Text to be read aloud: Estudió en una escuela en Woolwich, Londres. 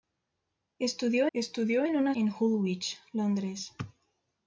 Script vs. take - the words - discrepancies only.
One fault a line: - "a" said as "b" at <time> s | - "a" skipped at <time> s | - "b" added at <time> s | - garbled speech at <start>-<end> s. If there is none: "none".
- "estudió" added at 1.3 s
- "escuela" skipped at 2.1 s